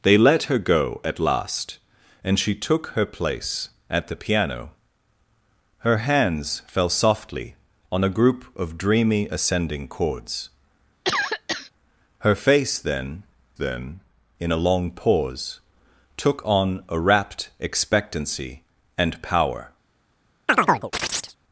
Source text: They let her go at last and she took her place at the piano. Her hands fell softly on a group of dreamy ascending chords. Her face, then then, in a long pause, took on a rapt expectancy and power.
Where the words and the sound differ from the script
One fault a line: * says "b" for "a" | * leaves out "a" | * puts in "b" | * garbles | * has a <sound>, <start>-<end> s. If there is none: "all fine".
* has a cough, 11.0-11.7 s
* has a chirp, 20.5-21.4 s